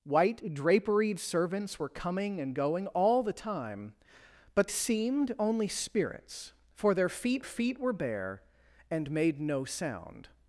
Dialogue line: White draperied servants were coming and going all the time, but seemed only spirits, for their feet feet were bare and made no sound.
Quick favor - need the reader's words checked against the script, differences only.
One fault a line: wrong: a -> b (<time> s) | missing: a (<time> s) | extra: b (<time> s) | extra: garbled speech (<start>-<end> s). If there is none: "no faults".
no faults